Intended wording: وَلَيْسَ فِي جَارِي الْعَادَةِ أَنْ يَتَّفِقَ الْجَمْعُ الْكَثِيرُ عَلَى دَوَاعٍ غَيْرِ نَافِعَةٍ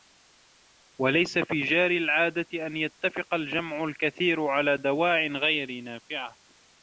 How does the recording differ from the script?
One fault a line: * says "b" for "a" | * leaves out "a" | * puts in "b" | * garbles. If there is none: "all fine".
all fine